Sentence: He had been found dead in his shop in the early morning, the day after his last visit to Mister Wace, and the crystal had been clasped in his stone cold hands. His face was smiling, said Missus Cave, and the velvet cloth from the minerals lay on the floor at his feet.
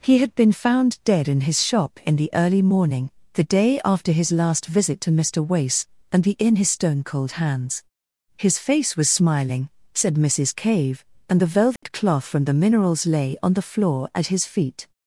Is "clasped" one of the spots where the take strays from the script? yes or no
yes